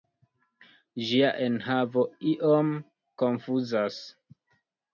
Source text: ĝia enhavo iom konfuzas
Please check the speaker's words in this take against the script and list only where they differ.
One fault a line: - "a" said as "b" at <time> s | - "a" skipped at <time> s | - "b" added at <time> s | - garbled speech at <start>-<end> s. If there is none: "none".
none